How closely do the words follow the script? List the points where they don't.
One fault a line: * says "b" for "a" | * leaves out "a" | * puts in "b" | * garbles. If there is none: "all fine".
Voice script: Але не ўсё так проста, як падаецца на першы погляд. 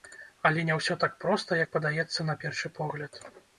all fine